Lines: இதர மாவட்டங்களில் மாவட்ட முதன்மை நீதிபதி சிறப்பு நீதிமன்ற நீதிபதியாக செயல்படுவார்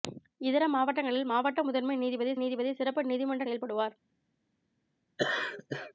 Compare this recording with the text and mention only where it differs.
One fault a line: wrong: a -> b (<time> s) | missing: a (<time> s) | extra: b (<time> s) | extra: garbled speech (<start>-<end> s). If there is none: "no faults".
extra: நீதிபதி (2.4 s)
missing: நீதிபதியாக (3.4 s)